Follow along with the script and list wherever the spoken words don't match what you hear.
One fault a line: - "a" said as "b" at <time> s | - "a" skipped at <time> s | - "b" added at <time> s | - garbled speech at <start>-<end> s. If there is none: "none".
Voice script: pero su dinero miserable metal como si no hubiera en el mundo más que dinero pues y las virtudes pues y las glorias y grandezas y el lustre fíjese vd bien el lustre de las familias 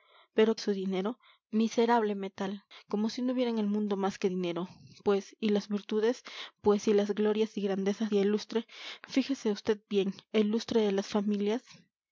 none